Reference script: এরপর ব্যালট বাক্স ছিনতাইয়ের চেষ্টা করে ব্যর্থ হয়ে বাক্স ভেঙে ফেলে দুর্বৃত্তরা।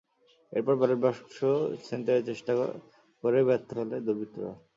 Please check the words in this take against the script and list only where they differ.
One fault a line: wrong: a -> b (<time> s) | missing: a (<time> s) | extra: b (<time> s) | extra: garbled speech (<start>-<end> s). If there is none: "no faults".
missing: হয়ে বাক্স ভেঙে (3.7 s)